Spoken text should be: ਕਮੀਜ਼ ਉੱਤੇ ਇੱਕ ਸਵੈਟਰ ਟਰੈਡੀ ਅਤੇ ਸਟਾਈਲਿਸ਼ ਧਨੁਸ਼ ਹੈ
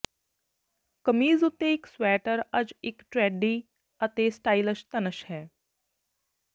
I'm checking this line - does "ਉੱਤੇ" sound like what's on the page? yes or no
yes